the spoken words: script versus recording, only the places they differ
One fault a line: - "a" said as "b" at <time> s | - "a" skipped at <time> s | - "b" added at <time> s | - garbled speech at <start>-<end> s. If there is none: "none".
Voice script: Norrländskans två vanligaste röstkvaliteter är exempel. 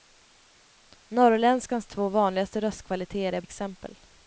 none